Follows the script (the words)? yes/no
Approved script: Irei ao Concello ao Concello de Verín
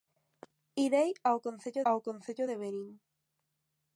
yes